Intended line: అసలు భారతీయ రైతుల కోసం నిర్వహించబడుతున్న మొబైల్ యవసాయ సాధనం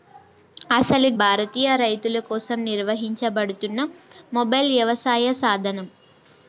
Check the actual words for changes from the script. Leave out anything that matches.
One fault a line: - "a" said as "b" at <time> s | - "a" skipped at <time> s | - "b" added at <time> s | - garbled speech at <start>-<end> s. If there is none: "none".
none